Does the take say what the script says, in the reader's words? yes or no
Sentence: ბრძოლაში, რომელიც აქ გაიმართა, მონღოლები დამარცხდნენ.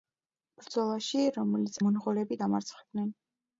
no